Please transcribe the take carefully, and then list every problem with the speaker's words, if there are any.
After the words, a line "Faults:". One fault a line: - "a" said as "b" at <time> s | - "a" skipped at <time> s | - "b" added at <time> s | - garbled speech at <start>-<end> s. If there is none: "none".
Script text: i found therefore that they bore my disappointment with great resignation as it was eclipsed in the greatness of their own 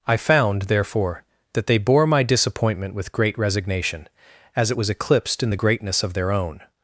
i found therefore that they bore my disappointment with great resignation as it was eclipsed in the greatness of their own
Faults:
none